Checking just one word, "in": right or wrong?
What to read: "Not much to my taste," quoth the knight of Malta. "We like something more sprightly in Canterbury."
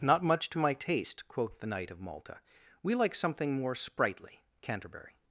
wrong